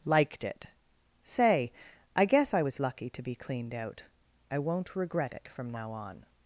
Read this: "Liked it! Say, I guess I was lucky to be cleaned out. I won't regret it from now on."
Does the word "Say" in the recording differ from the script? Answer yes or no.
no